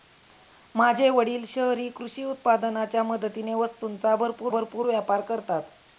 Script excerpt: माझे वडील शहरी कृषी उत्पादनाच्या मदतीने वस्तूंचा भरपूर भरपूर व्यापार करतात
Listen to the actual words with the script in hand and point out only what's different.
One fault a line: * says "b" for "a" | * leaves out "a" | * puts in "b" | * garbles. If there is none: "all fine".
all fine